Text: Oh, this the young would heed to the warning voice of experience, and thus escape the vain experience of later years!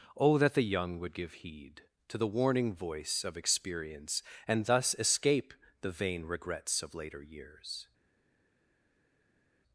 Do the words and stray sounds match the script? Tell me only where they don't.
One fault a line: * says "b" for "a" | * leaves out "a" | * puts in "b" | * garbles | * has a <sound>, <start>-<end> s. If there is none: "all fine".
* says "that" for "this"
* puts in "give"
* says "regrets" for "experience"